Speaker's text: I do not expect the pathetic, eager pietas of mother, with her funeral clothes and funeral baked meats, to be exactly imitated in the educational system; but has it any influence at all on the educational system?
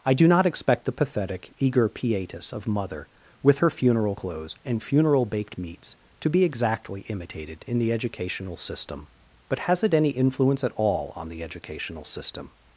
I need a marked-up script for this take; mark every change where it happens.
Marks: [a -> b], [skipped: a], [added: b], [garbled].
I do not expect the pathetic, eager pietas of mother, with her funeral clothes and funeral baked meats, to be exactly imitated in the educational system; but has it any influence at all on the educational system?